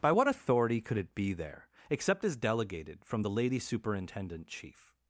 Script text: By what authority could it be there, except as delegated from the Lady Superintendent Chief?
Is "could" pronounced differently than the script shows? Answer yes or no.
no